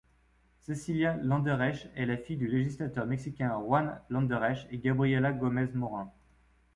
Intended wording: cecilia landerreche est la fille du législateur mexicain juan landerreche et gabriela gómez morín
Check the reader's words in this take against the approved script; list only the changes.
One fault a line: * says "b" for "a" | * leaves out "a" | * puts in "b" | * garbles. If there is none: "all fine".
all fine